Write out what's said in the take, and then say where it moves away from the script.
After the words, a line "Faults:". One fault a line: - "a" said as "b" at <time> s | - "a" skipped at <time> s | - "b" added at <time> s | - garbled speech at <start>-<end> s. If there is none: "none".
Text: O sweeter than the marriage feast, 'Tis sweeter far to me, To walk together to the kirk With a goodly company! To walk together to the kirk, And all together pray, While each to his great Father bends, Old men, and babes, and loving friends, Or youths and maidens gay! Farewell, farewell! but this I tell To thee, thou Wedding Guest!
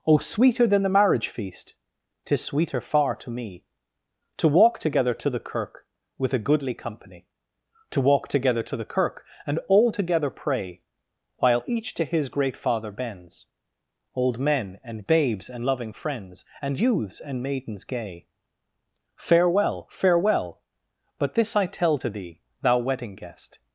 O sweeter than the marriage feast, 'Tis sweeter far to me, To walk together to the kirk With a goodly company! To walk together to the kirk, And all together pray, While each to his great Father bends, Old men, and babes, and loving friends, And youths and maidens gay! Farewell, farewell! but this I tell To thee, thou Wedding Guest!
Faults:
- "Or" said as "And" at 16.6 s